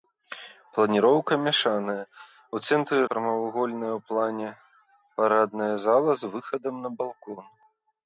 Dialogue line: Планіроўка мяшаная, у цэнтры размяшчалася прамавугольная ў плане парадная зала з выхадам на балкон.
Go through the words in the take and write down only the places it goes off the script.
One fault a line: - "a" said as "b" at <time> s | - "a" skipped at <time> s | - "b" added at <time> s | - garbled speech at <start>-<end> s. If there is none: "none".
- "размяшчалася" skipped at 3.0 s